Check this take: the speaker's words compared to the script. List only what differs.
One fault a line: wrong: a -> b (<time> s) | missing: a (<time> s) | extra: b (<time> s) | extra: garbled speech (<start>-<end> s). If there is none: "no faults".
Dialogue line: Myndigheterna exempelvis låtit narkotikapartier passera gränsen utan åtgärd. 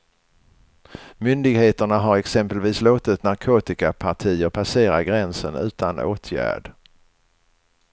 extra: har (2.0 s)